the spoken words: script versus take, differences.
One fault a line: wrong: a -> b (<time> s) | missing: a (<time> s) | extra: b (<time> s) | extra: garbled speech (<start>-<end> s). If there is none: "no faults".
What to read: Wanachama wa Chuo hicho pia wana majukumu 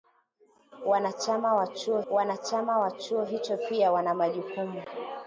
extra: wanachama wa Chuo (2.1 s)